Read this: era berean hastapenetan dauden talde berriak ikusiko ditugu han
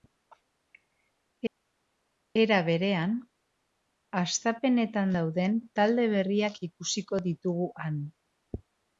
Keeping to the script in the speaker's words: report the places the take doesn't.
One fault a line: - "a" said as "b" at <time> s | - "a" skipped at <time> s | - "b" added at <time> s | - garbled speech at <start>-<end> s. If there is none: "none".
none